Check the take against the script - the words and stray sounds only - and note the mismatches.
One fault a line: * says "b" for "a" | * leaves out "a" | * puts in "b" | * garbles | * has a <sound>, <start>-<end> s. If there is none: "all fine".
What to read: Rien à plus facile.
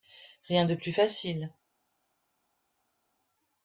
* says "de" for "à"